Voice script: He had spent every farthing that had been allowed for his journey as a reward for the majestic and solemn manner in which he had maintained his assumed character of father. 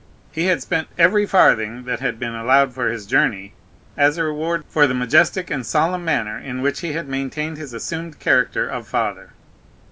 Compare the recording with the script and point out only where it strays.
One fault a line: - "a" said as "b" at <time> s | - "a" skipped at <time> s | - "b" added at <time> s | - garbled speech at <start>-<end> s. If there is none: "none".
none